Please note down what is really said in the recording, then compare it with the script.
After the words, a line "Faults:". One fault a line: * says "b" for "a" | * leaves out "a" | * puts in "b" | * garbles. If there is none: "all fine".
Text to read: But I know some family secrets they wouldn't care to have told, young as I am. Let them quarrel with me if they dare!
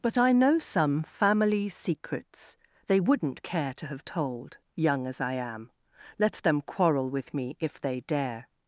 But I know some family secrets they wouldn't care to have told, young as I am. Let them quarrel with me if they dare!
Faults:
all fine